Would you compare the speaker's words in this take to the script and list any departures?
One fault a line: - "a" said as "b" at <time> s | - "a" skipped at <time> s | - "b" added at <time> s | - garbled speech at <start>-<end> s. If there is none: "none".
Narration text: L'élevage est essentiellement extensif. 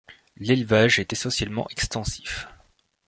none